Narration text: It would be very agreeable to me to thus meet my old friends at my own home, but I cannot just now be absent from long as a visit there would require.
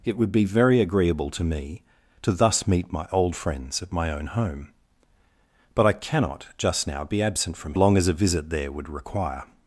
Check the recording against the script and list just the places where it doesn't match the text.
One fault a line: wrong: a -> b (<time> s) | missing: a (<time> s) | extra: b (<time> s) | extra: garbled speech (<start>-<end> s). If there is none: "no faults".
no faults